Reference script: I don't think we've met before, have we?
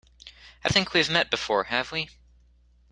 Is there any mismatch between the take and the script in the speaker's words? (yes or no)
yes